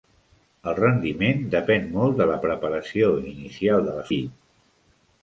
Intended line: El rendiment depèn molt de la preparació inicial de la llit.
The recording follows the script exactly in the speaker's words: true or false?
true